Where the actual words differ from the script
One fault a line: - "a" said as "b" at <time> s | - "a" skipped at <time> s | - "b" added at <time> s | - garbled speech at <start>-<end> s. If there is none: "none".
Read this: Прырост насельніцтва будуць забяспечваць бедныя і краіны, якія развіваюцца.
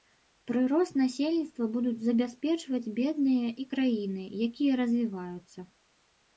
none